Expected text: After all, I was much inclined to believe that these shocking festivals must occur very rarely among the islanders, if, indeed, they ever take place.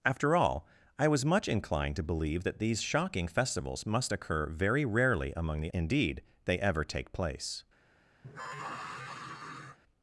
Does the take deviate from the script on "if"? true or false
true